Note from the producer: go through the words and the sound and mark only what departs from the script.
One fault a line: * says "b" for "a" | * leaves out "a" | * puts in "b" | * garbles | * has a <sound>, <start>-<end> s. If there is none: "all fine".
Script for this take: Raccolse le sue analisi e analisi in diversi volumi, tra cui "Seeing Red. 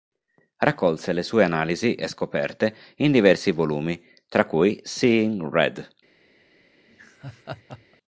* says "scoperte" for "analisi"
* has a laugh, 6.9-8.0 s